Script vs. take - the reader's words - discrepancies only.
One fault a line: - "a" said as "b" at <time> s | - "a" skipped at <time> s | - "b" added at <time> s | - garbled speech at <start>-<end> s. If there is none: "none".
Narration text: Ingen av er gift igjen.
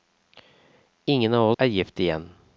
none